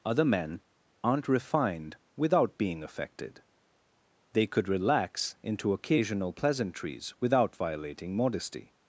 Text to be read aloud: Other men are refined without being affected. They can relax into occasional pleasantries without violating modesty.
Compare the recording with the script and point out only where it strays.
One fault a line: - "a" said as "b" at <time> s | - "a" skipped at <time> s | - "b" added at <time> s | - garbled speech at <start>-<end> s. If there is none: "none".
- "are" said as "aren't" at 1.0 s
- "can" said as "could" at 4.5 s